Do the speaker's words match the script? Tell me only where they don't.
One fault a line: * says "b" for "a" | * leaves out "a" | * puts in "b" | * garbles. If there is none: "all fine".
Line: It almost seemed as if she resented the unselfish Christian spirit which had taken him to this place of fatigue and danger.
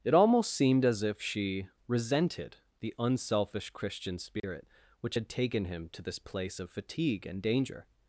all fine